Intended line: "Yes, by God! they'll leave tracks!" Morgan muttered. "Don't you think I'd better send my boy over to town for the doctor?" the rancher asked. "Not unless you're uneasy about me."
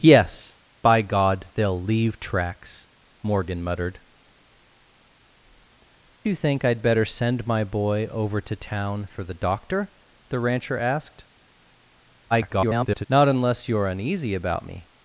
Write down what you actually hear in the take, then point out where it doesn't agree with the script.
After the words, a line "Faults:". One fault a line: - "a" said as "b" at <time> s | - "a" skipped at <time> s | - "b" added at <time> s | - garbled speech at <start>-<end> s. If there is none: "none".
"Yes, by God! they'll leave tracks!" Morgan muttered. "You think I'd better send my boy over to town for the doctor?" the rancher asked. [garbled] "Not unless you're uneasy about me."
Faults:
- "Don't" skipped at 4.0 s
- garbled speech at 12.3-13.1 s